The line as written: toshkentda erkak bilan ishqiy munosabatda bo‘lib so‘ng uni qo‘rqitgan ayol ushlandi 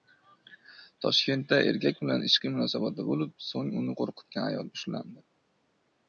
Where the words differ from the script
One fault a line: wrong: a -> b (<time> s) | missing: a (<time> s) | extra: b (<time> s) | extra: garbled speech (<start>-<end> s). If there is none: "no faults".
no faults